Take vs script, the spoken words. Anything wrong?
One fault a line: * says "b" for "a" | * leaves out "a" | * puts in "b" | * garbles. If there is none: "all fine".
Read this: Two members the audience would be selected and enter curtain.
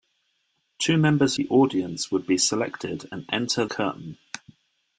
all fine